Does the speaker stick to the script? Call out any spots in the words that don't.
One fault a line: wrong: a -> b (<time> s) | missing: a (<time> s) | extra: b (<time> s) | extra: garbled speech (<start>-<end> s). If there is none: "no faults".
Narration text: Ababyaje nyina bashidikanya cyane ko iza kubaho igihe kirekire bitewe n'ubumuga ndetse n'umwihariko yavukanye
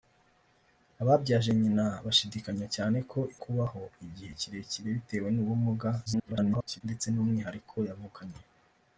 missing: iza (3.2 s)
extra: garbled speech (6.1-6.8 s)